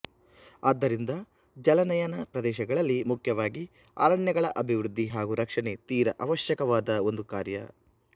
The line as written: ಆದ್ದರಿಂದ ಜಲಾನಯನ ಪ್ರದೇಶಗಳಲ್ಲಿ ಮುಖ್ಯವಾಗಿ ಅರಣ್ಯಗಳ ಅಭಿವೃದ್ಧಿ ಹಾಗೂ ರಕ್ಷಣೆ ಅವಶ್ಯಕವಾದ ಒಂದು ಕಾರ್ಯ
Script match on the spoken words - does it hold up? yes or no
no